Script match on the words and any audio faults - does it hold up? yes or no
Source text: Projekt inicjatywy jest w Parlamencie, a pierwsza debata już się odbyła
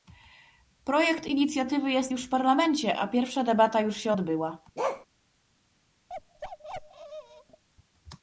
no